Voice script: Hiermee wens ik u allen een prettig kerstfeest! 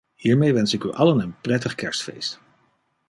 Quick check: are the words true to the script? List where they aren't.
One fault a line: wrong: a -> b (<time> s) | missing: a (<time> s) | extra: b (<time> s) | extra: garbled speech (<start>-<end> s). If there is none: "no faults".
no faults